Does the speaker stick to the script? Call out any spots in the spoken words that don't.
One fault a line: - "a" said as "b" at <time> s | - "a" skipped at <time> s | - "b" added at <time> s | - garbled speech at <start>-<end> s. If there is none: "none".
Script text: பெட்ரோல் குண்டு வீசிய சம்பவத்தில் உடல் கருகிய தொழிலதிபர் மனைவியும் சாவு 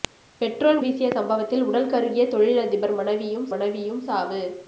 - "குண்டு" skipped at 0.8 s
- "மனைவியும்" added at 3.5 s